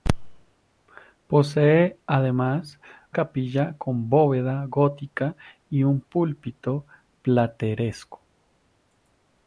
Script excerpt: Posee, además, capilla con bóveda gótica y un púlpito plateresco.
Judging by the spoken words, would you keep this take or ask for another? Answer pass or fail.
pass